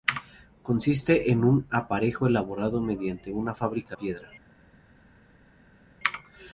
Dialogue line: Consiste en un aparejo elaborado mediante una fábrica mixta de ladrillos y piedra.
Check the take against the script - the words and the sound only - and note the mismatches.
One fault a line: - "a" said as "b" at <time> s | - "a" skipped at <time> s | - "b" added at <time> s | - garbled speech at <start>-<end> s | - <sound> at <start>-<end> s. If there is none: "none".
- "mixta de ladrillos" skipped at 4.0 s